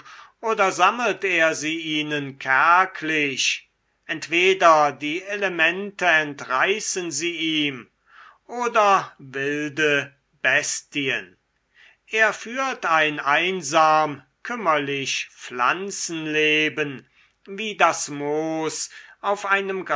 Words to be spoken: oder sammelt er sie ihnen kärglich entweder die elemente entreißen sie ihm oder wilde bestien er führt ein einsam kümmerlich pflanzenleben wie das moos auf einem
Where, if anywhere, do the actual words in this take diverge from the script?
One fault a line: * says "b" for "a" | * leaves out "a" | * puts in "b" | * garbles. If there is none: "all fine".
all fine